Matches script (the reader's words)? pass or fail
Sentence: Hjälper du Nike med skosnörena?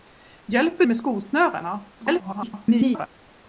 fail